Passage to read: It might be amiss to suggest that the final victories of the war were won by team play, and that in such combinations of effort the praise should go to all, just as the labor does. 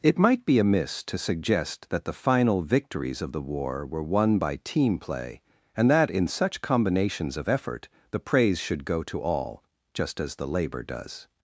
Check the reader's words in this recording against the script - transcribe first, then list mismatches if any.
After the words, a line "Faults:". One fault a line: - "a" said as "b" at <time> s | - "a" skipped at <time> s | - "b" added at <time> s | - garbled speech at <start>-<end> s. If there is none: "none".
It might be amiss to suggest that the final victories of the war were won by team play, and that in such combinations of effort the praise should go to all, just as the labor does.
Faults:
none